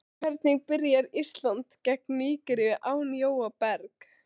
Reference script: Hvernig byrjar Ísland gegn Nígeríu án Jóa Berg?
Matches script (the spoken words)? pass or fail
pass